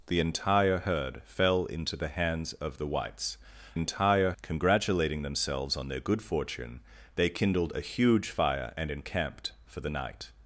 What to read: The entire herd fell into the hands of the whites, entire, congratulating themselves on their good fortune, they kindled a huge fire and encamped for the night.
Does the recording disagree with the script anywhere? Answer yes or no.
no